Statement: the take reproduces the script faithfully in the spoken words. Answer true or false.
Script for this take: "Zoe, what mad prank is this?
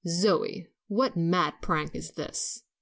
true